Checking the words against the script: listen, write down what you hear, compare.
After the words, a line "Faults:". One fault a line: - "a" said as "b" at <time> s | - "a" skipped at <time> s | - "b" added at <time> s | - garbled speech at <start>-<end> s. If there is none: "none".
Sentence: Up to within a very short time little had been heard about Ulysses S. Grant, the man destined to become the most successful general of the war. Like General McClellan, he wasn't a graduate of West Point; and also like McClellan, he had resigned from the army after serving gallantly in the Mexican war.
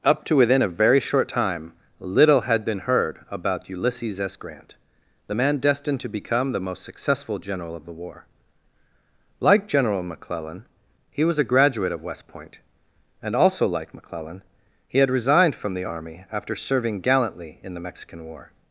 Up to within a very short time little had been heard about Ulysses S. Grant, the man destined to become the most successful general of the war. Like General McClellan, he was a graduate of West Point; and also like McClellan, he had resigned from the army after serving gallantly in the Mexican war.
Faults:
- "wasn't" said as "was" at 11.2 s